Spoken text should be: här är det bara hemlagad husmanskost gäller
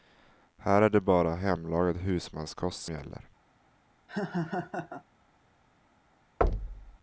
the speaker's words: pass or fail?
pass